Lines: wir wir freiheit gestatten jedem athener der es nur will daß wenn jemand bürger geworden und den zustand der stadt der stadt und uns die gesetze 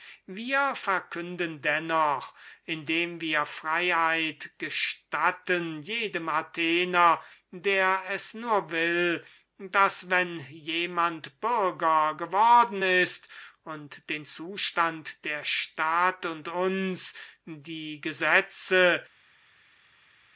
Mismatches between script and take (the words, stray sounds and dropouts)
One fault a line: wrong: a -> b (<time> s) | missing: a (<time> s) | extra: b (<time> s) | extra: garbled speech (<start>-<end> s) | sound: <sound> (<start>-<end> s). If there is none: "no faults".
extra: verkünden dennoch indem (0.8 s)
extra: ist (12.8 s)
missing: der stadt (16.3 s)